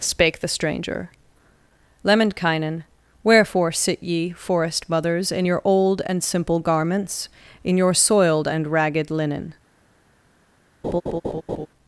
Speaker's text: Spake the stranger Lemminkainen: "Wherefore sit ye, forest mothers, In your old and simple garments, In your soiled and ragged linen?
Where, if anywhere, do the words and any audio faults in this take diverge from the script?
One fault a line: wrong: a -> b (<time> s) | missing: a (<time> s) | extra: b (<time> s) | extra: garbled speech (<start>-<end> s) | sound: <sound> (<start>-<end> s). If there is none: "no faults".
sound: laugh (10.8-11.7 s)